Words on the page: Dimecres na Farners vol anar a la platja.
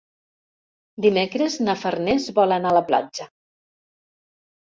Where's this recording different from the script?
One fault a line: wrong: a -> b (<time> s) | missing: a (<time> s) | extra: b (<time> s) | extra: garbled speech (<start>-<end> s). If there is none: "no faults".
no faults